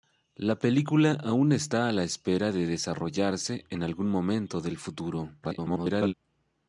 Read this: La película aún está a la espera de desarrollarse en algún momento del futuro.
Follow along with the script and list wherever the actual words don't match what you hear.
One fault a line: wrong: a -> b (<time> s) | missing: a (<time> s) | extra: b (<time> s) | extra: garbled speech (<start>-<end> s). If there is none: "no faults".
extra: garbled speech (5.4-6.1 s)